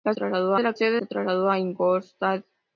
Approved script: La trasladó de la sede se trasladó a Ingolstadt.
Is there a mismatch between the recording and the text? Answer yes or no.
no